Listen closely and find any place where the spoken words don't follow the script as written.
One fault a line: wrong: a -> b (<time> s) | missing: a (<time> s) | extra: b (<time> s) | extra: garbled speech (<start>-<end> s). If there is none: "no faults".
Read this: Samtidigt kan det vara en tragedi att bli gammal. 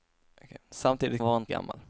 missing: kan (1.2 s)
missing: tragedi att bli (1.5 s)